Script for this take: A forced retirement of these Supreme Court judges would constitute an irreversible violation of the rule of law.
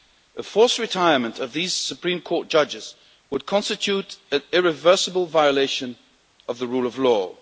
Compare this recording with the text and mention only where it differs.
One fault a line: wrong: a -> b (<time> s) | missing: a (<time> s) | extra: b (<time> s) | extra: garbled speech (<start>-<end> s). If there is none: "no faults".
no faults